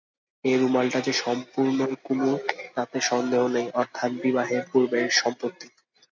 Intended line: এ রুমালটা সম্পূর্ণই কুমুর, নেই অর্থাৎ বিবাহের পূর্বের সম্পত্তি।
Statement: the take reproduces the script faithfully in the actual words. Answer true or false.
false